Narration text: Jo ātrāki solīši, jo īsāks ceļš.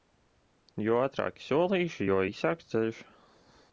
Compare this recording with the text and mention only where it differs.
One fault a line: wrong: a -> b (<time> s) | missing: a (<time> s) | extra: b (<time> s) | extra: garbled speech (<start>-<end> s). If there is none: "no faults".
no faults